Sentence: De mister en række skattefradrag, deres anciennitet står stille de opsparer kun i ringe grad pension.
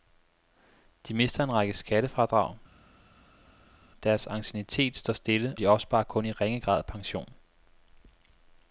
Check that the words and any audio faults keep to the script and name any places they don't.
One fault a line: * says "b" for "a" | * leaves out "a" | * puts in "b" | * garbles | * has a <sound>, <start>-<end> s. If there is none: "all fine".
all fine